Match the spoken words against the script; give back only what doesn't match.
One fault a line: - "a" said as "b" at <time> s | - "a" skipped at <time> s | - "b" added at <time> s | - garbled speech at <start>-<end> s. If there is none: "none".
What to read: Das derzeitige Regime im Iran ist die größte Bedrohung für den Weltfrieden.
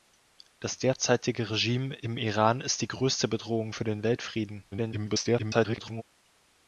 - garbled speech at 4.7-6.0 s